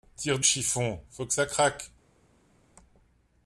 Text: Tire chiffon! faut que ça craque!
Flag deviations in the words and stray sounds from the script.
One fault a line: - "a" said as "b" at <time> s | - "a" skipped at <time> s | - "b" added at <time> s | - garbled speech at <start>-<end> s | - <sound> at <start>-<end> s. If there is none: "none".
none